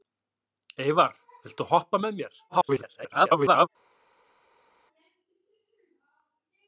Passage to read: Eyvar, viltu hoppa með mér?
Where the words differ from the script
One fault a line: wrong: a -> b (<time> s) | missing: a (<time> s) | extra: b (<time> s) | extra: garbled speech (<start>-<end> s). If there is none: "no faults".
extra: garbled speech (2.5-3.7 s)